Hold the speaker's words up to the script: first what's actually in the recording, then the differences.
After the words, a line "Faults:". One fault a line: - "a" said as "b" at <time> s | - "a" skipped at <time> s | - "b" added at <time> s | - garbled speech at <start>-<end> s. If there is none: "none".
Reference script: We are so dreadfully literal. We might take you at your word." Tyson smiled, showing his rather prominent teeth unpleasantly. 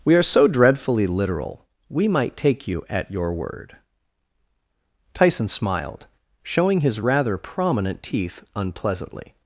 We are so dreadfully literal. We might take you at your word." Tyson smiled, showing his rather prominent teeth unpleasantly.
Faults:
none